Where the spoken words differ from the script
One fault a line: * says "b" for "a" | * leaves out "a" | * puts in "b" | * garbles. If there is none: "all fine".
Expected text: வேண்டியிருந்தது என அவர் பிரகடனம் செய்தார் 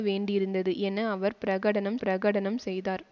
* puts in "பிரகடனம்"